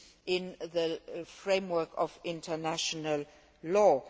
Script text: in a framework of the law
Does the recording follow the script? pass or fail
fail